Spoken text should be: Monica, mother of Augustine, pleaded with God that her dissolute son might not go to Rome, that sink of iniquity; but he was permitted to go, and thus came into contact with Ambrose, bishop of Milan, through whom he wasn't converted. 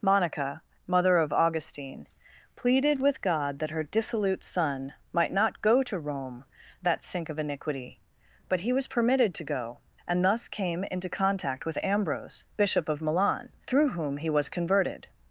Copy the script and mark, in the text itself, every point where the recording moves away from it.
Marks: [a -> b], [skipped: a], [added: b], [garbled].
Monica, mother of Augustine, pleaded with God that her dissolute son might not go to Rome, that sink of iniquity; but he was permitted to go, and thus came into contact with Ambrose, bishop of Milan, through whom he [wasn't -> was] converted.